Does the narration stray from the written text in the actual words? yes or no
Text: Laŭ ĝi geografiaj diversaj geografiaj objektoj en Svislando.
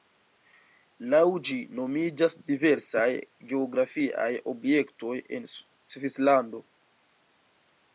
yes